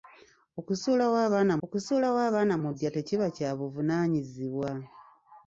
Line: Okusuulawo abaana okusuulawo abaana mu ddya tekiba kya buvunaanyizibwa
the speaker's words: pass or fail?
pass